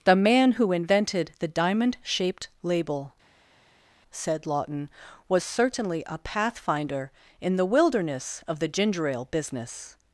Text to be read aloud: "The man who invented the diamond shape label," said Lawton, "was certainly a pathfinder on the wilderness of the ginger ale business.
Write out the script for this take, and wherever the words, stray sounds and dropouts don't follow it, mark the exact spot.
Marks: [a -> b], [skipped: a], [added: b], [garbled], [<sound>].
"The man who invented the diamond [shape -> shaped] label," said Lawton, "was certainly a pathfinder [on -> in] the wilderness of the ginger ale business.